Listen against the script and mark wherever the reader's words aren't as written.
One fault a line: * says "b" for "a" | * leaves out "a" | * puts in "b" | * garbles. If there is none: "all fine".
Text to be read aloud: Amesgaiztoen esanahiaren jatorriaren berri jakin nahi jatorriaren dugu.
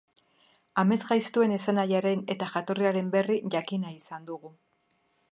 * puts in "eta"
* says "izan" for "jatorriaren"